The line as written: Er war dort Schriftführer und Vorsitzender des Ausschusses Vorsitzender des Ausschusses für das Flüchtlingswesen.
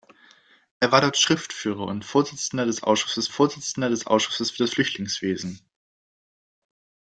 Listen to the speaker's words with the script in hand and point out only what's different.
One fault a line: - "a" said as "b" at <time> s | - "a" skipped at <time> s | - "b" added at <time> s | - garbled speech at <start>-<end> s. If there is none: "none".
none